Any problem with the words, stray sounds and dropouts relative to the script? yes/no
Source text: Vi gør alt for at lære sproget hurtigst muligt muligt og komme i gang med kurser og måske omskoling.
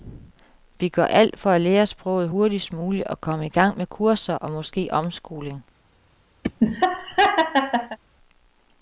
yes